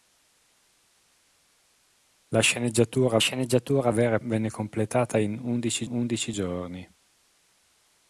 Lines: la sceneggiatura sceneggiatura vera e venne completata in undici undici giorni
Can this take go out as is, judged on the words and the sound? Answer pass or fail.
pass